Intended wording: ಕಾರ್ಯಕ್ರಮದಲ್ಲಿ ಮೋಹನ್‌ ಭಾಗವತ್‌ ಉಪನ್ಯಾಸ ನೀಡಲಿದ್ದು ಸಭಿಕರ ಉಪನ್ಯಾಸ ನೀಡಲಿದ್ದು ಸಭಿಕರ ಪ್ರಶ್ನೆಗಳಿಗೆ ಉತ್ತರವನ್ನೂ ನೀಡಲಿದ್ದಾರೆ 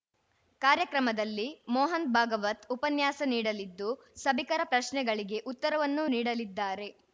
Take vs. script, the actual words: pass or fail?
fail